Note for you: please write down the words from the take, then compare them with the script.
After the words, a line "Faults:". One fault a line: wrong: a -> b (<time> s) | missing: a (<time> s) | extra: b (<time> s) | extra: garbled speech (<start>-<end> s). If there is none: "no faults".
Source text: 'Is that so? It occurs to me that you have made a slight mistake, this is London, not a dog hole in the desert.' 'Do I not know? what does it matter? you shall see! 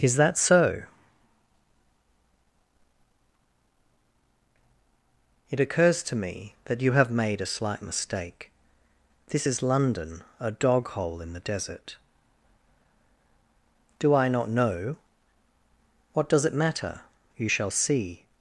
'Is that so? It occurs to me that you have made a slight mistake, this is London, a dog hole in the desert.' 'Do I not know? what does it matter? you shall see!
Faults:
missing: not (10.2 s)